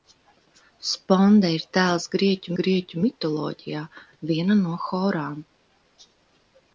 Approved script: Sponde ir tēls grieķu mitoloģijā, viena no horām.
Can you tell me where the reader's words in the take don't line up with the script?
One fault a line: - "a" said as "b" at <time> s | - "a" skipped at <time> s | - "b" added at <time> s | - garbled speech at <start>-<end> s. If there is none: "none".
- "grieķu" added at 2.6 s